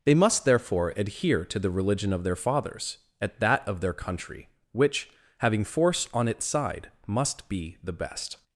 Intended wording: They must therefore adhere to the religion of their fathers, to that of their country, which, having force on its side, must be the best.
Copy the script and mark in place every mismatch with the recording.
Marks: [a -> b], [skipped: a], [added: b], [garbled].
They must therefore adhere to the religion of their fathers, [to -> at] that of their country, which, having force on its side, must be the best.